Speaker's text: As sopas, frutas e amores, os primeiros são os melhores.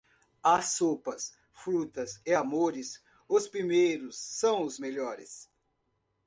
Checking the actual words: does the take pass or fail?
pass